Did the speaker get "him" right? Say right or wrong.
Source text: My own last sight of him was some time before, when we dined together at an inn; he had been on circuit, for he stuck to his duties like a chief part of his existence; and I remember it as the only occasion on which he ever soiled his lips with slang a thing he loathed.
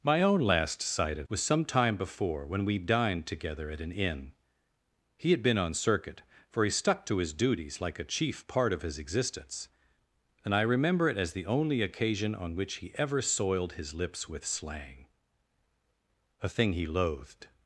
wrong